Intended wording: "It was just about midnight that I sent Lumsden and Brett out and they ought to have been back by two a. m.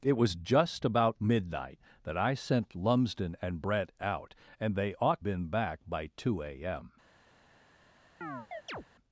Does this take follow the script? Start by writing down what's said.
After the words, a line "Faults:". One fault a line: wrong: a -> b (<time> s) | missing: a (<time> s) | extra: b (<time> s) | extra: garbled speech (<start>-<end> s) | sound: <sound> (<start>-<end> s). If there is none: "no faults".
"It was just about midnight that I sent Lumsden and Brett out and they ought been back by two a. m.
Faults:
missing: to have (5.2 s)
sound: chirp (8.2-8.8 s)